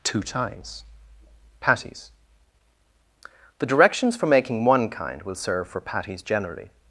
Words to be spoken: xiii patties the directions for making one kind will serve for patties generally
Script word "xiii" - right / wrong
wrong